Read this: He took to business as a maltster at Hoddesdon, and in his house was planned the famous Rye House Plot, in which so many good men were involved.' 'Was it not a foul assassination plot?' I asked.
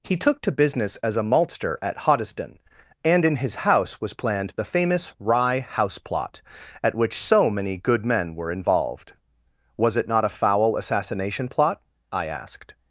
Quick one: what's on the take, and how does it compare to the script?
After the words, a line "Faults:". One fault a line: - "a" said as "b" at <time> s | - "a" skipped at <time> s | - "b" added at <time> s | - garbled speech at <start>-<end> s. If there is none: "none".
He took to business as a maltster at Hoddesdon, and in his house was planned the famous Rye House Plot, at which so many good men were involved.' 'Was it not a foul assassination plot?' I asked.
Faults:
- "in" said as "at" at 6.8 s